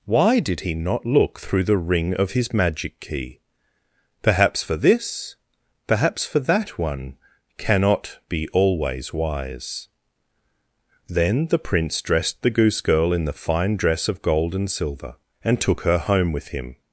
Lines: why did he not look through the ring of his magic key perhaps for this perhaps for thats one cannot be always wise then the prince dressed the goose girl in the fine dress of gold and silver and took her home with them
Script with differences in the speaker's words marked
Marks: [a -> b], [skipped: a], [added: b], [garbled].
why did he not look through the ring of his magic key perhaps for this perhaps for [thats -> that] one cannot be always wise then the prince dressed the goose girl in the fine dress of gold and silver and took her home with [them -> him]